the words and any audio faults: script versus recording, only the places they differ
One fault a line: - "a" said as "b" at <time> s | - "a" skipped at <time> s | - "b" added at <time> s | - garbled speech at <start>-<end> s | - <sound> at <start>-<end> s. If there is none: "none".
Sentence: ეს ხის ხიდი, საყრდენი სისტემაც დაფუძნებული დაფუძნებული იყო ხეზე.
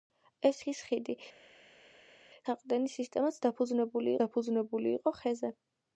none